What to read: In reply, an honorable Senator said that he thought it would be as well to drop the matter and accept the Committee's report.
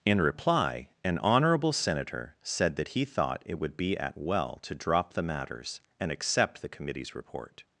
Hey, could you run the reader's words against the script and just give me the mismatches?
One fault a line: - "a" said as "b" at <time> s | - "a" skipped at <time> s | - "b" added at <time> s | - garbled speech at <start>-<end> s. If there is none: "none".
- "as" said as "at" at 4.0 s
- "matter" said as "matters" at 5.2 s